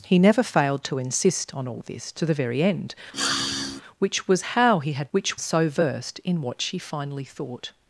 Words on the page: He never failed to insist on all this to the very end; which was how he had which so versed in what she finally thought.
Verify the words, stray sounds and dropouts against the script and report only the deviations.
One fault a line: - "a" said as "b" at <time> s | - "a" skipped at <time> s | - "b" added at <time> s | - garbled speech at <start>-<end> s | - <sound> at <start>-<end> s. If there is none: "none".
- sniff at 3.1-3.8 s